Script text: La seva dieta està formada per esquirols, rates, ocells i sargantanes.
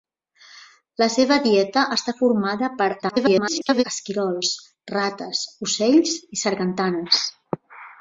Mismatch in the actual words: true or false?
true